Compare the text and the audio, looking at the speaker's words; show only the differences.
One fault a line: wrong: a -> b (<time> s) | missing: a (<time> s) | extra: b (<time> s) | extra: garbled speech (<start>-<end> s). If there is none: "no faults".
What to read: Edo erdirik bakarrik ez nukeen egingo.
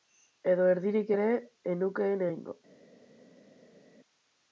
wrong: bakarrik -> ere (1.1 s)